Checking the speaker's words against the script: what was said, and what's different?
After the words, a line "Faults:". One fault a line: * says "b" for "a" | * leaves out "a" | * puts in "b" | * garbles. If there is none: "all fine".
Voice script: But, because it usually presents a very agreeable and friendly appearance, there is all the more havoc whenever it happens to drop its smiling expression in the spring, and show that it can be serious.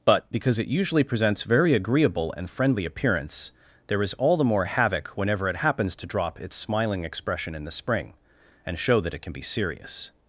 But, because it usually presents very agreeable and friendly appearance, there is all the more havoc whenever it happens to drop its smiling expression in the spring, and show that it can be serious.
Faults:
* leaves out "a"